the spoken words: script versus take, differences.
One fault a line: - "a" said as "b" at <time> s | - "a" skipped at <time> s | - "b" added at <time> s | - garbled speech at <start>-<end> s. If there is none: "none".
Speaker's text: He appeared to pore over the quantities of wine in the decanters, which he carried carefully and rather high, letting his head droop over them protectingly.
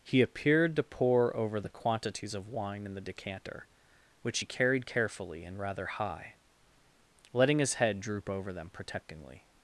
- "decanters" said as "decanter" at 3.0 s